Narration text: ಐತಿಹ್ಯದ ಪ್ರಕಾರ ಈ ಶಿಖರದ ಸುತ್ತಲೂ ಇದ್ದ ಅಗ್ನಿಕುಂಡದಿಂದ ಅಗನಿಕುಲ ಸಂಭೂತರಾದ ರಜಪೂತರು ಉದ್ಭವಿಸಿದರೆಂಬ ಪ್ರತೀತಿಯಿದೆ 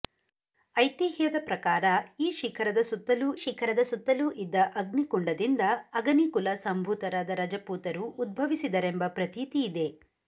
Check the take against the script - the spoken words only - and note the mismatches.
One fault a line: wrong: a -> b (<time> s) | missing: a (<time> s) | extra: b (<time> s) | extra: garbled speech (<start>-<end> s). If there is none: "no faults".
extra: ಶಿಖರದ ಸುತ್ತಲೂ (3.4 s)